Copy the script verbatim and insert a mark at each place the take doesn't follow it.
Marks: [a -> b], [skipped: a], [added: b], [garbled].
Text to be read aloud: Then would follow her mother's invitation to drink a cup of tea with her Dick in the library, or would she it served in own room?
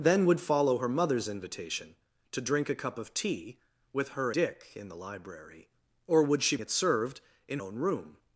Then would follow her mother's invitation to drink a cup of tea with her Dick in the library, or would she it served in own room?